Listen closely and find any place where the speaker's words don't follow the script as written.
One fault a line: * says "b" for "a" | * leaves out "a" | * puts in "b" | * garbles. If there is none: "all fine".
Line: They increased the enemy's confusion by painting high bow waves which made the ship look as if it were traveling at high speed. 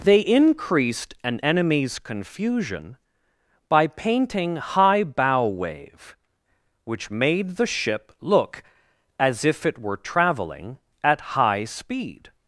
* says "an" for "the"
* says "wave" for "waves"